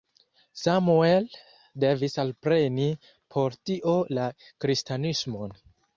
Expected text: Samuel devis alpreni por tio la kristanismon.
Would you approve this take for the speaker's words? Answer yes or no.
yes